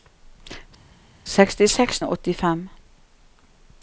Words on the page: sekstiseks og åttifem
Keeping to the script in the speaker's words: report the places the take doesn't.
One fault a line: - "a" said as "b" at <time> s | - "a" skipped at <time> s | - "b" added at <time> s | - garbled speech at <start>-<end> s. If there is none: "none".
none